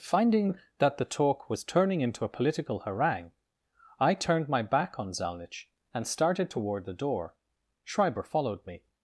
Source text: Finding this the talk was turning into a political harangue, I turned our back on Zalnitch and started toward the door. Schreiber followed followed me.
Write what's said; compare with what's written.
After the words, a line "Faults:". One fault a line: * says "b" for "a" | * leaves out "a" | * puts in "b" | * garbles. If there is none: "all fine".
Finding that the talk was turning into a political harangue, I turned my back on Zalnitch and started toward the door. Schreiber followed me.
Faults:
* says "that" for "this"
* says "my" for "our"
* leaves out "followed"